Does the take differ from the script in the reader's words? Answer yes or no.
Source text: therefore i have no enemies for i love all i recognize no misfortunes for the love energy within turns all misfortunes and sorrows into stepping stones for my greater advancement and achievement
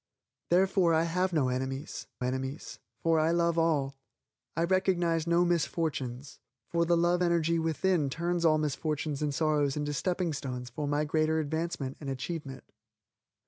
yes